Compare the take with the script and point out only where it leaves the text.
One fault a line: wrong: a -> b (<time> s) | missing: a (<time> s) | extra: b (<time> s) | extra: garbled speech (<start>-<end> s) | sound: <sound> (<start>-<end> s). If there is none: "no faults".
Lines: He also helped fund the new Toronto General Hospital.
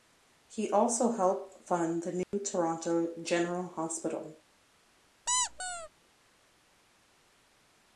sound: dropout (2.2-2.3 s)
sound: squeak (5.3-5.9 s)